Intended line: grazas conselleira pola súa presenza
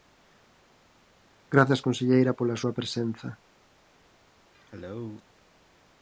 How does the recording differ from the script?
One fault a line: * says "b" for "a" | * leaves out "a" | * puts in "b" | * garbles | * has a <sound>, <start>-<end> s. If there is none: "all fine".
* has a cough, 4.5-5.2 s